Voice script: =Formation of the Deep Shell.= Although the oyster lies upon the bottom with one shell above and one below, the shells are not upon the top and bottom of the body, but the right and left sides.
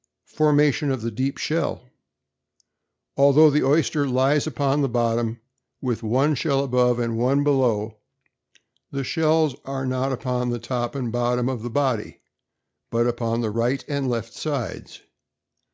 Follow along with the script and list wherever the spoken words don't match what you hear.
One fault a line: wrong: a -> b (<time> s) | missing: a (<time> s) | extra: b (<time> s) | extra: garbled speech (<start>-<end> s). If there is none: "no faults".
extra: upon (13.1 s)